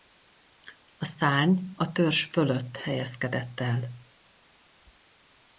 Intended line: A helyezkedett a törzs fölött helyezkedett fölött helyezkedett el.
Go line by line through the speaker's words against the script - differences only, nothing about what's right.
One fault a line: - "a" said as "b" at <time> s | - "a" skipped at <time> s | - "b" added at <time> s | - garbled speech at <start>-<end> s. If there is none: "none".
- "helyezkedett" said as "szárny" at 1.1 s
- "fölött helyezkedett" skipped at 3.6 s